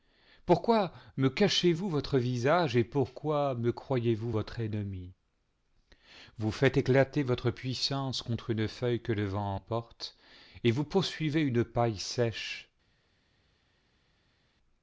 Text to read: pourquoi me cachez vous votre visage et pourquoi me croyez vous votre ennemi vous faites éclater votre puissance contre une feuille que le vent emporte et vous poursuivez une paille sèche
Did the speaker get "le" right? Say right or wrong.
right